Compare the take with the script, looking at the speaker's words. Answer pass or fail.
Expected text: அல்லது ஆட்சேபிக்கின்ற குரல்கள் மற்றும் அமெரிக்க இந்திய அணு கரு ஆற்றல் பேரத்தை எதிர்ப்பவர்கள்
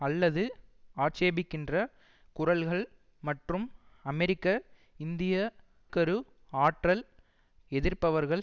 fail